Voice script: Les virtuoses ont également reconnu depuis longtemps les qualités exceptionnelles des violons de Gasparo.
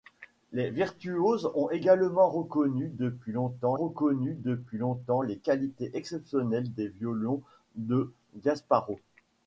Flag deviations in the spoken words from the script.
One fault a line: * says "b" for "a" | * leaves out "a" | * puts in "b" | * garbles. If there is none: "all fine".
* puts in "reconnu depuis longtemps"